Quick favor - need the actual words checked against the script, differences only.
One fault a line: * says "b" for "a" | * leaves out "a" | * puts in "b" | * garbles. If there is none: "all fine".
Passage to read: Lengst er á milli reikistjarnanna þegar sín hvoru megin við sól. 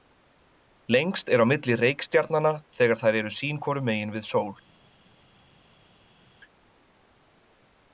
* puts in "þær eru"